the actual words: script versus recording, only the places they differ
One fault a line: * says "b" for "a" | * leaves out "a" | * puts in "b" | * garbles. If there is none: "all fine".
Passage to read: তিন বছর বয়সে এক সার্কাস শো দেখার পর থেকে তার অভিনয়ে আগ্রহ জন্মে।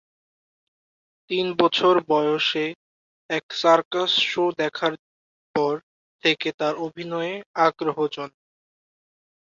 all fine